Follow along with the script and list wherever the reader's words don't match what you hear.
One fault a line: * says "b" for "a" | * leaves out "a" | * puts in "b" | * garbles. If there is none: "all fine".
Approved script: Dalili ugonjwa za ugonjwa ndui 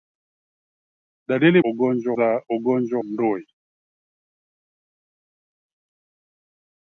all fine